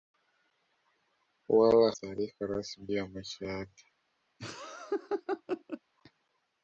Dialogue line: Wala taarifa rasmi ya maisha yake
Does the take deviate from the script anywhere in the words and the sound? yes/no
yes